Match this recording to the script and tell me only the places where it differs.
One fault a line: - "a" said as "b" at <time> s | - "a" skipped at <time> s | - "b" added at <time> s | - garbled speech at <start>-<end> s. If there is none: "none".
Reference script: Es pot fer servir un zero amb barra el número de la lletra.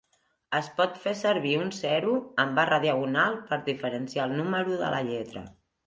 - "diagonal per diferenciar" added at 2.9 s